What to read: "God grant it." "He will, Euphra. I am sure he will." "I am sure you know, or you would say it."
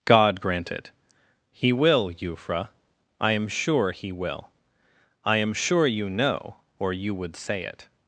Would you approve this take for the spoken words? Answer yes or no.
yes